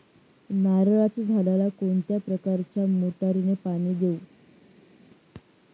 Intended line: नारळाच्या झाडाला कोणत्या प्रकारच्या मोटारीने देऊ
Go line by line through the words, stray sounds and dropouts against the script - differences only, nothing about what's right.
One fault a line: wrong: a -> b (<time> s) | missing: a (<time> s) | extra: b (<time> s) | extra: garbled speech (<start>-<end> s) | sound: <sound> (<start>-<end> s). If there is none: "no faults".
extra: पाणी (3.6 s)